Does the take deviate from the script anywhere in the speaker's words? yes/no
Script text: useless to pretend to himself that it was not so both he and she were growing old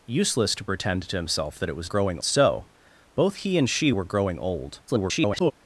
yes